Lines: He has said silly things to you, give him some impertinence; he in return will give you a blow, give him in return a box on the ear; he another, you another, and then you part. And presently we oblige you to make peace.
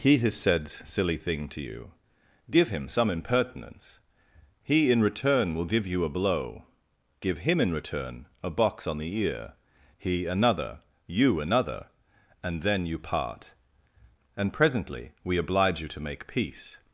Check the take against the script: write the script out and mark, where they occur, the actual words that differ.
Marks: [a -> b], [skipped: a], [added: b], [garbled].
He has said silly [things -> thing] to you, give him some impertinence; he in return will give you a blow, give him in return a box on the ear; he another, you another, and then you part. And presently we oblige you to make peace.